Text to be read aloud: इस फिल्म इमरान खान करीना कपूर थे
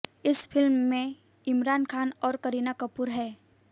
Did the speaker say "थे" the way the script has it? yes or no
no